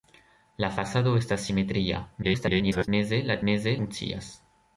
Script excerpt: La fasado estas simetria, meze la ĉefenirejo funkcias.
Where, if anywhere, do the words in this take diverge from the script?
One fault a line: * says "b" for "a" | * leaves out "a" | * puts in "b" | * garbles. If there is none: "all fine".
* garbles
* says "meze" for "ĉefenirejo"